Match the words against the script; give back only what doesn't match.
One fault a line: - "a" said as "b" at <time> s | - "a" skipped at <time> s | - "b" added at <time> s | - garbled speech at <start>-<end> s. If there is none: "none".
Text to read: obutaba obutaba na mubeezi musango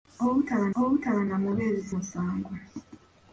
none